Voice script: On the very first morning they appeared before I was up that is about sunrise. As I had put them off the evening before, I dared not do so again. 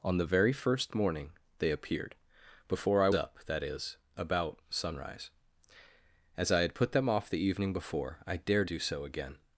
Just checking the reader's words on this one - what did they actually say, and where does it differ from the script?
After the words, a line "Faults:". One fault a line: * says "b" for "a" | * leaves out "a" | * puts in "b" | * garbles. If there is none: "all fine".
On the very first morning they appeared before I up that is about sunrise. As I had put them off the evening before, I dared do so again.
Faults:
* leaves out "was"
* leaves out "not"